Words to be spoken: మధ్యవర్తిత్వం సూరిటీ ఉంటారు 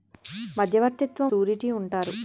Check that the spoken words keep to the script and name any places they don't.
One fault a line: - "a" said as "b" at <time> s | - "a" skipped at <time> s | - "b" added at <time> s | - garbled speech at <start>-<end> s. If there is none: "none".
none